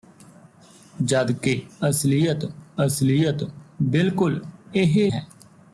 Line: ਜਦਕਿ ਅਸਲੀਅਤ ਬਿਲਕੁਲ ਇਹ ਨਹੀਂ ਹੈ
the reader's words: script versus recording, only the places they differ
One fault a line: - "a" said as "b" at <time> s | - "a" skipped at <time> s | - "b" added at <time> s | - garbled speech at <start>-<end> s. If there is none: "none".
- "ਅਸਲੀਅਤ" added at 2.9 s
- "ਨਹੀਂ" skipped at 5.1 s